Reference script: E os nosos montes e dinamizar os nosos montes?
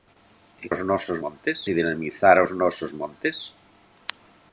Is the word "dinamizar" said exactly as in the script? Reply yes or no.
yes